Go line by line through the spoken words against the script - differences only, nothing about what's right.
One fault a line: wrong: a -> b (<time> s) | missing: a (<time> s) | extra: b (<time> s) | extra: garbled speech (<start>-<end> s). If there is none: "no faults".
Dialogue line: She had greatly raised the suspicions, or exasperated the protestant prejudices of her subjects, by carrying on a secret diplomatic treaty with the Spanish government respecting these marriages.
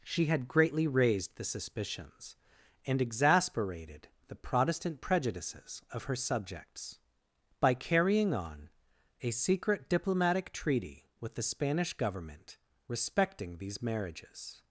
wrong: or -> and (2.9 s)